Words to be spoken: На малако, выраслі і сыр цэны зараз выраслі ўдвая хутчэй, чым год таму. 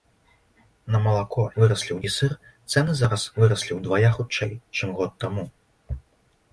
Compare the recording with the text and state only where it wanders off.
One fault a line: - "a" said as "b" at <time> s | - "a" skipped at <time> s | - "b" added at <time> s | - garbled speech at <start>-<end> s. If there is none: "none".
none